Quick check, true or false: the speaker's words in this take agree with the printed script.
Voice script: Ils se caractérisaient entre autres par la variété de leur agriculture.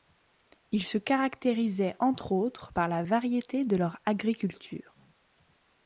true